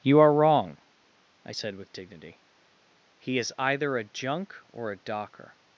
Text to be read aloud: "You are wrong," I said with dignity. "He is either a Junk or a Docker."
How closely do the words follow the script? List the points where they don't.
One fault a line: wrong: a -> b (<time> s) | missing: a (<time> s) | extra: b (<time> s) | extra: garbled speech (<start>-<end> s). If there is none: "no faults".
no faults